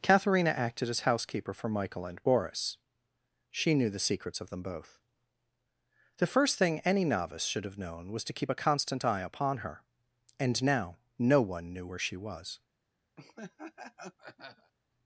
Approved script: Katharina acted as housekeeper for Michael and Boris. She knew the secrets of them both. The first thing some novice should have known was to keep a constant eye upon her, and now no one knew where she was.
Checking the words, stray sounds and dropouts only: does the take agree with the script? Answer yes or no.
no